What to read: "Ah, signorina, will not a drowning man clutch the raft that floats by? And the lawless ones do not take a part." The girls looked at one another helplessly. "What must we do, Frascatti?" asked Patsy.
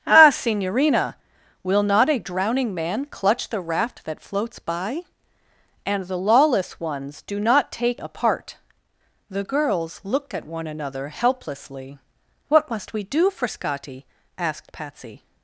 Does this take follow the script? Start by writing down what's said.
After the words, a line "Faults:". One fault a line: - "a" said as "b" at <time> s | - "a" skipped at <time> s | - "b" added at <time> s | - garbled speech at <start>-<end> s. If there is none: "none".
"Ah, signorina, will not a drowning man clutch the raft that floats by? And the lawless ones do not take a part." The girls looked at one another helplessly. "What must we do, Frascatti?" asked Patsy.
Faults:
none